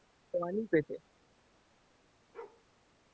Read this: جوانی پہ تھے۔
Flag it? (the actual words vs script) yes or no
no